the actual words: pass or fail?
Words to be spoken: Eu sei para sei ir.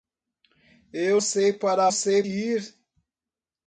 pass